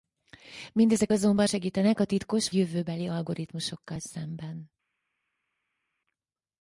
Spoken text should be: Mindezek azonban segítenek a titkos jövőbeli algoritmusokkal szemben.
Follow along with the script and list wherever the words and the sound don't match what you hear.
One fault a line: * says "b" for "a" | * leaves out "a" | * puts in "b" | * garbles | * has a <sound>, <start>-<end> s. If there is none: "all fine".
all fine